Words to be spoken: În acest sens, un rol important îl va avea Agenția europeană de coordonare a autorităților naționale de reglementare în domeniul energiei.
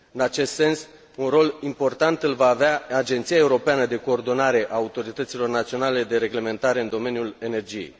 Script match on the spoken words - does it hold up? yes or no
yes